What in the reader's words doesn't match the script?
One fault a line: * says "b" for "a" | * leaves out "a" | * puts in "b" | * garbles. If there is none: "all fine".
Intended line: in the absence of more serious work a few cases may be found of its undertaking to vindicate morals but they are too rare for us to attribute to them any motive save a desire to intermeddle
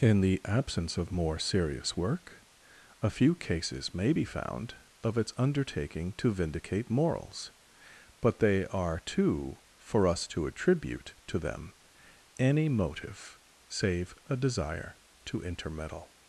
* leaves out "rare"